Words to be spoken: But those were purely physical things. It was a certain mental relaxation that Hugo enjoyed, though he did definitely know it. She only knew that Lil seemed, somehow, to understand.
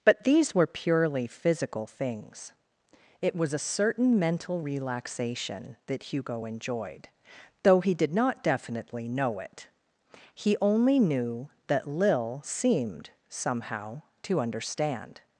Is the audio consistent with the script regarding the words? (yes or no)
no